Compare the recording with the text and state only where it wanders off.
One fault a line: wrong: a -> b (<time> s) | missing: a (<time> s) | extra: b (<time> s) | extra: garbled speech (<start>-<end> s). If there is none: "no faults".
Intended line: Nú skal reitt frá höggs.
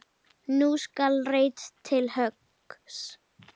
wrong: frá -> til (1.9 s)